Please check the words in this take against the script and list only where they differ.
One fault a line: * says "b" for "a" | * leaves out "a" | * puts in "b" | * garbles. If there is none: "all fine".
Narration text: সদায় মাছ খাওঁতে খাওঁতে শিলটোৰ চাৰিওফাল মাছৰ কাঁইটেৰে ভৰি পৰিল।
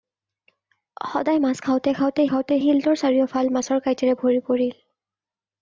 * puts in "খাওঁতে"